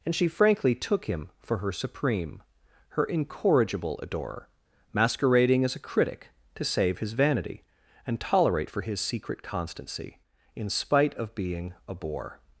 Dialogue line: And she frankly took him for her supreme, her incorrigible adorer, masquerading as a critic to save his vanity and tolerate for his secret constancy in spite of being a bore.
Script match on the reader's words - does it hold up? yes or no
yes